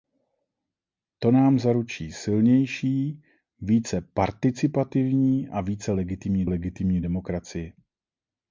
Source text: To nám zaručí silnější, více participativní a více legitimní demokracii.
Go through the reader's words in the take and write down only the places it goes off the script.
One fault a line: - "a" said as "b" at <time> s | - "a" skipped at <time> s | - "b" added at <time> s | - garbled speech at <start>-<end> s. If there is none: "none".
- "legitimní" added at 6.4 s